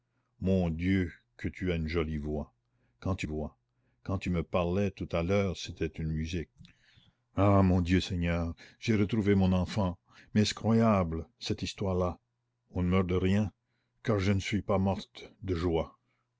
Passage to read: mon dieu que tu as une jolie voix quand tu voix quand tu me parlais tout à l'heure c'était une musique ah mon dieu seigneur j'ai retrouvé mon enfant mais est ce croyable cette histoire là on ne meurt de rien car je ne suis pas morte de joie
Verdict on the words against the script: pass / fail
pass